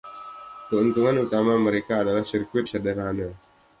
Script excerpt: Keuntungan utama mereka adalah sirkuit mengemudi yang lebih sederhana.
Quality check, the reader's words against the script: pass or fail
fail